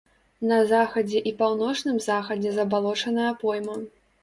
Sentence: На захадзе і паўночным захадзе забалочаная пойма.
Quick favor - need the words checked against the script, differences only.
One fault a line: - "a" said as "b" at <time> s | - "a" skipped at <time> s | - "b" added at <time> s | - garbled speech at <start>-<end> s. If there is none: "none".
none